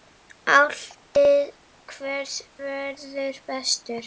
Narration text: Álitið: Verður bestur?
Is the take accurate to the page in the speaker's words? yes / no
no